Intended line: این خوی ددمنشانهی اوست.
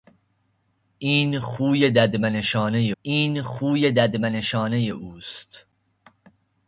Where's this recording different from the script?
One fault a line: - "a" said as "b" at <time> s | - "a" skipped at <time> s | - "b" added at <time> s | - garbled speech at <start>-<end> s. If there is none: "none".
- "این خوی ددمنشانهی" added at 3.0 s